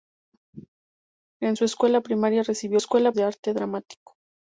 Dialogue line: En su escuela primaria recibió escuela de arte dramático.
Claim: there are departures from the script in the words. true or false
false